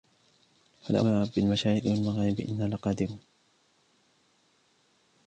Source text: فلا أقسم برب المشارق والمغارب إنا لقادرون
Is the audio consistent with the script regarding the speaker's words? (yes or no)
no